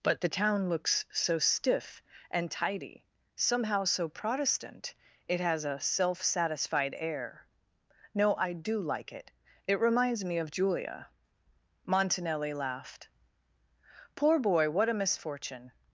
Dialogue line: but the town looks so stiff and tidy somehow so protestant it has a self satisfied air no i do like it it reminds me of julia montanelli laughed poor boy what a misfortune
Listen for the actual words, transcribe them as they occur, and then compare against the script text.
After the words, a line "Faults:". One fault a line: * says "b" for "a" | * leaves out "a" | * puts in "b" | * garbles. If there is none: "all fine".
but the town looks so stiff and tidy somehow so protestant it has a self satisfied air no i do like it it reminds me of julia montanelli laughed poor boy what a misfortune
Faults:
all fine